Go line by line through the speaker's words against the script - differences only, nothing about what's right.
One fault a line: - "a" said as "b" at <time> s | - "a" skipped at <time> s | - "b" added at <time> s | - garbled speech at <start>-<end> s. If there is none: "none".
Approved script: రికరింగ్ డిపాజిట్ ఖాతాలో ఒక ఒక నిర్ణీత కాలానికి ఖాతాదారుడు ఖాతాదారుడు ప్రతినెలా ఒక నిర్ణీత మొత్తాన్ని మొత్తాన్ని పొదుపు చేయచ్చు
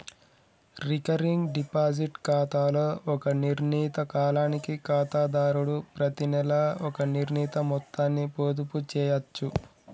- "ఒక" skipped at 3.3 s
- "ఖాతాదారుడు" skipped at 5.8 s
- "మొత్తాన్ని" skipped at 8.3 s